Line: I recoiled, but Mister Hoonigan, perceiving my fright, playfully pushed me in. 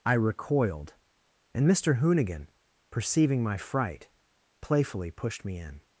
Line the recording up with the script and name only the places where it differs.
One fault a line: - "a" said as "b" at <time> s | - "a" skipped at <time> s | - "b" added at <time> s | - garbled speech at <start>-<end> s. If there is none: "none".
- "but" said as "and" at 1.5 s